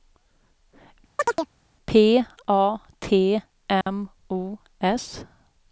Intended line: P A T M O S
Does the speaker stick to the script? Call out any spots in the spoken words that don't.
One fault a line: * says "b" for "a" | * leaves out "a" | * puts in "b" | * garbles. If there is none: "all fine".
all fine